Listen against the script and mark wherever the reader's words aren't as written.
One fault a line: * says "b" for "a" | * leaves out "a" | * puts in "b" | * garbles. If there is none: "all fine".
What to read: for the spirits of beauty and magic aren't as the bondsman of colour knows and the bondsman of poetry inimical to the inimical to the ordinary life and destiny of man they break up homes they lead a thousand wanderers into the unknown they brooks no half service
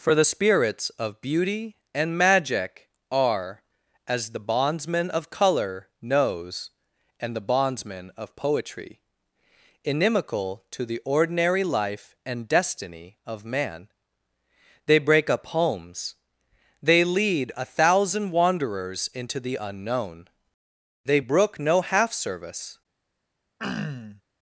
* says "are" for "aren't"
* leaves out "inimical to the"
* says "brook" for "brooks"